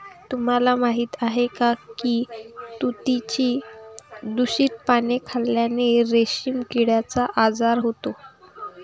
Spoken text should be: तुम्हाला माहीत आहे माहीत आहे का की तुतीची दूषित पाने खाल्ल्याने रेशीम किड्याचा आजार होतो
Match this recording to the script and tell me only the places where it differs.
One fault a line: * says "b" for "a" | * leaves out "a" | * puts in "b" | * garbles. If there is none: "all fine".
* leaves out "माहीत आहे"